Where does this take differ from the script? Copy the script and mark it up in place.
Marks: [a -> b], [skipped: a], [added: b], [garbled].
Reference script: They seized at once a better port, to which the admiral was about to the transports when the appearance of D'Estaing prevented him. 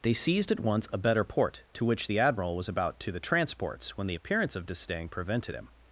They seized at once a better port, to which the admiral was about to the transports when the appearance of D'Estaing prevented him.